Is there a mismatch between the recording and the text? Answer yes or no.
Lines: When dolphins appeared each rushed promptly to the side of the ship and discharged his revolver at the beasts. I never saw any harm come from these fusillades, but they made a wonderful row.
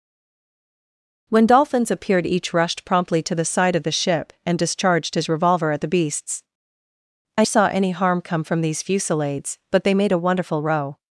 yes